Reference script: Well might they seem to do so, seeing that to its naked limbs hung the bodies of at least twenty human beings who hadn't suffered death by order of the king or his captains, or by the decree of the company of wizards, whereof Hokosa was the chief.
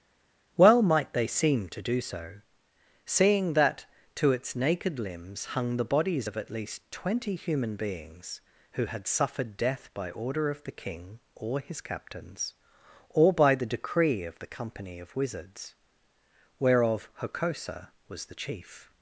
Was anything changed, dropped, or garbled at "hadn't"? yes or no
yes